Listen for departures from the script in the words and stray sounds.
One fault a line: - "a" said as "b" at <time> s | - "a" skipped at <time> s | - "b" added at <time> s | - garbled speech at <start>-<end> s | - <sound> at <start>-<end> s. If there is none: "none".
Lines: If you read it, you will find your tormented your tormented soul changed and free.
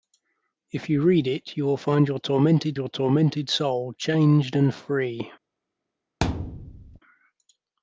- thud at 6.2-7.0 s